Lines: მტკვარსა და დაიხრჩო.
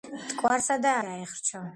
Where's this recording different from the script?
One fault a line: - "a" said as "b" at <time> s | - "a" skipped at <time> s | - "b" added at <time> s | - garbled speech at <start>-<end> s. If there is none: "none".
none